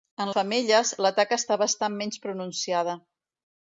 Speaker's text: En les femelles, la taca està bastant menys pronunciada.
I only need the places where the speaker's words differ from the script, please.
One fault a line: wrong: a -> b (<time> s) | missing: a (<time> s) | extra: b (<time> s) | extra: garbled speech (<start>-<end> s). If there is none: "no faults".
missing: les (0.3 s)